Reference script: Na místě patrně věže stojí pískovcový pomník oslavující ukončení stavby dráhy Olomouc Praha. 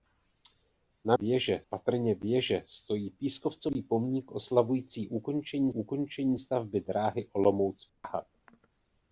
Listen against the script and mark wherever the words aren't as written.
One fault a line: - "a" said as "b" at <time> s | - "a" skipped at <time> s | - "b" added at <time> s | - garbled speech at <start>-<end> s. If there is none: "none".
- "místě" said as "věže" at 1.1 s
- "ukončení" added at 5.7 s